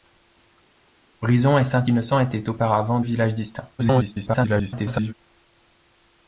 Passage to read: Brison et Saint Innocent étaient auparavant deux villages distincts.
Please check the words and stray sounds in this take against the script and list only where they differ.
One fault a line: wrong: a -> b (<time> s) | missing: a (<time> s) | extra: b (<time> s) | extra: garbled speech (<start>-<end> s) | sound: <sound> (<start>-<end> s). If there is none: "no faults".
missing: deux (3.0 s)
extra: garbled speech (3.8-5.1 s)